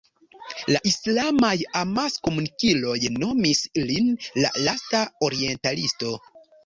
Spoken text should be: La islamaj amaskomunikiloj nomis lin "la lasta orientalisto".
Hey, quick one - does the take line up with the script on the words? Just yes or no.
yes